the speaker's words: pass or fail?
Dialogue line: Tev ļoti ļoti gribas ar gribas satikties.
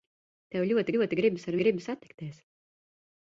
pass